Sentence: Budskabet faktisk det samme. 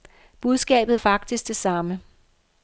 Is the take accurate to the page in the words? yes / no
yes